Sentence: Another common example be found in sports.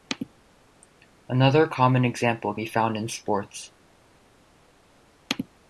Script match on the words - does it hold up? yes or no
yes